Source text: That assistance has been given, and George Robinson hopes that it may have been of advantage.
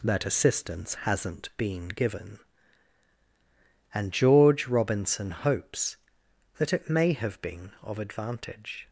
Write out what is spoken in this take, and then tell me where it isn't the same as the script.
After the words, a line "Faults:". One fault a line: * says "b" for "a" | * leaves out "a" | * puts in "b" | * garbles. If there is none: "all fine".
That assistance hasn't been given, and George Robinson hopes that it may have been of advantage.
Faults:
* says "hasn't" for "has"